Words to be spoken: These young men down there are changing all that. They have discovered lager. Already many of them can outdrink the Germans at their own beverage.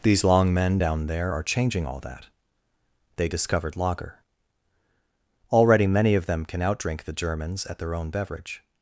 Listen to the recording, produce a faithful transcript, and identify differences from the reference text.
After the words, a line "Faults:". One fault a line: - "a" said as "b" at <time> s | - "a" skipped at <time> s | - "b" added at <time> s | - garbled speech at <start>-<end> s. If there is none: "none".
These long men down there are changing all that. They discovered lager. Already many of them can outdrink the Germans at their own beverage.
Faults:
- "young" said as "long" at 0.2 s
- "have" skipped at 3.3 s